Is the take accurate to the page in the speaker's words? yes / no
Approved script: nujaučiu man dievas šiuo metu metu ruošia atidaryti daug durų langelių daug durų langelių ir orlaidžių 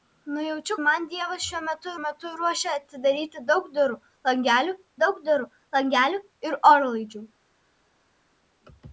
yes